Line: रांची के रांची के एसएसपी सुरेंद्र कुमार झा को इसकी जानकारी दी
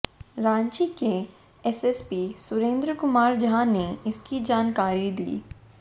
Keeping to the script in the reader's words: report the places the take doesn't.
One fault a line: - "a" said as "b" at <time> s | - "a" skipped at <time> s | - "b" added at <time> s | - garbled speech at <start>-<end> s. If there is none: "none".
- "रांची के" skipped at 1.1 s
- "को" said as "ने" at 3.6 s